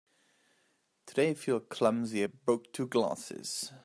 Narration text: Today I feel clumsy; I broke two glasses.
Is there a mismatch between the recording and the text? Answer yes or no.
no